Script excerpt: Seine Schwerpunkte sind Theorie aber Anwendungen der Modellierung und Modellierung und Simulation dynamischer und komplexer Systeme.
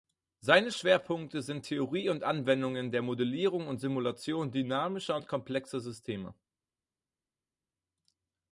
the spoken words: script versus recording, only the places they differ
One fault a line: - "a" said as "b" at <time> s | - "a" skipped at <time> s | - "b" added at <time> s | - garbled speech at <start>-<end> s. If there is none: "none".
- "aber" said as "und" at 2.1 s
- "Modellierung und" skipped at 3.8 s